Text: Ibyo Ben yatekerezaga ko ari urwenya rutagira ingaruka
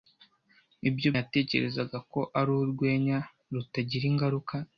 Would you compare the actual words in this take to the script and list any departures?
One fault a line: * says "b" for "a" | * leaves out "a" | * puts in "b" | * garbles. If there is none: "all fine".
* leaves out "Ben"